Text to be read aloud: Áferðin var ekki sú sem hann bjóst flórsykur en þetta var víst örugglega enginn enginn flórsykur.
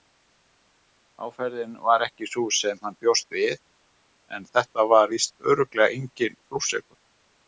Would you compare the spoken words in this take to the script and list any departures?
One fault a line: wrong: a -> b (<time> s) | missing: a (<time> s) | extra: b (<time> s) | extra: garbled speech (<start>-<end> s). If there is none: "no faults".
wrong: flórsykur -> við (3.4 s)
missing: enginn (6.4 s)